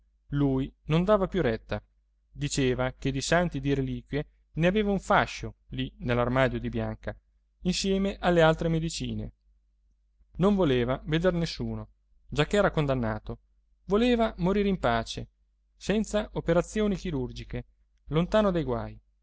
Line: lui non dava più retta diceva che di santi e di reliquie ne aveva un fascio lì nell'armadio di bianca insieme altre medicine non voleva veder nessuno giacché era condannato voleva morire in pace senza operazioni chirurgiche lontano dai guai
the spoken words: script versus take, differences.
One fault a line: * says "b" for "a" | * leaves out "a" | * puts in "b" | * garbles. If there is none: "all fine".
* puts in "alle"